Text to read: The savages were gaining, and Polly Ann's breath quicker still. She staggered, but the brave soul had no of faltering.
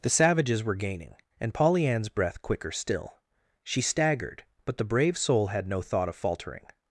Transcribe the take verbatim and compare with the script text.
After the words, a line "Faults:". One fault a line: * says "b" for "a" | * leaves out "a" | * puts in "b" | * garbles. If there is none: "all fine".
The savages were gaining, and Polly Ann's breath quicker still. She staggered, but the brave soul had no thought of faltering.
Faults:
* puts in "thought"